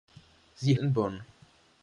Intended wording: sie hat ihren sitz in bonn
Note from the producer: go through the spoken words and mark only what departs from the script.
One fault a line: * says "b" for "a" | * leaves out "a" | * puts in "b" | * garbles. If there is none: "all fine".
* leaves out "hat ihren sitz"